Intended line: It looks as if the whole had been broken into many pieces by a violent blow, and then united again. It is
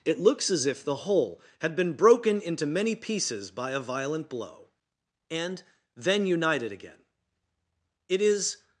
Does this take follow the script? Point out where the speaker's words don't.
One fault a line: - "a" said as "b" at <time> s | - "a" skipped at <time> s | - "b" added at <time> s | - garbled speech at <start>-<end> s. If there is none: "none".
none